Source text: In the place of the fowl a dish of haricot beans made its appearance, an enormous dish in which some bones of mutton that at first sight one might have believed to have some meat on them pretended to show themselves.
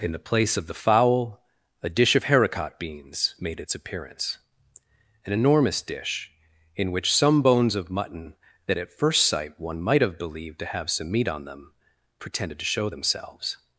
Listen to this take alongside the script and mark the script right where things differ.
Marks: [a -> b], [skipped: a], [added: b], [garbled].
In the place of the fowl a dish of haricot beans made its appearance, an enormous dish in which some bones of mutton that at first sight one might have believed to have some meat on them pretended to show themselves.